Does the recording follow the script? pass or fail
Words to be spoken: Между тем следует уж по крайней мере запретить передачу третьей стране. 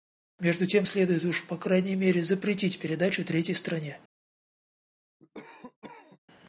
pass